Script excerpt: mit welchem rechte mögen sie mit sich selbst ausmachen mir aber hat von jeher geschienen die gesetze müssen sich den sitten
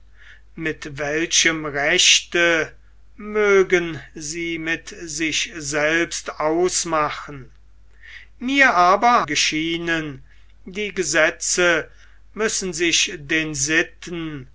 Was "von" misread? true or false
true